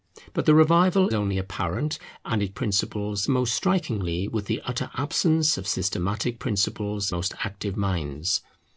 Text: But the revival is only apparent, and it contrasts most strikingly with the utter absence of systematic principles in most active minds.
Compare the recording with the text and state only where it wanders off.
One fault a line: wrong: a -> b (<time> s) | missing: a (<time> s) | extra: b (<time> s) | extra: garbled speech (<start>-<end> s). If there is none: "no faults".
missing: is (1.1 s)
wrong: contrasts -> principles (2.6 s)
missing: in (7.1 s)